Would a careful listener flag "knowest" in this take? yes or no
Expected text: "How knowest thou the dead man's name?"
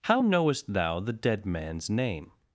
no